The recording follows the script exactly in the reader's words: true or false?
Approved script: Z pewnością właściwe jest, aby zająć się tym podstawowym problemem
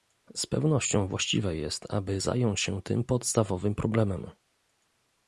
true